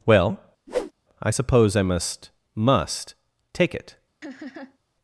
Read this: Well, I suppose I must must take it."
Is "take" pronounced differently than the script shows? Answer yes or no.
no